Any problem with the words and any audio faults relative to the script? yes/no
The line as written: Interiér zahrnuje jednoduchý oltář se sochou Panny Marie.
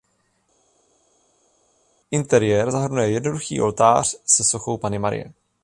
no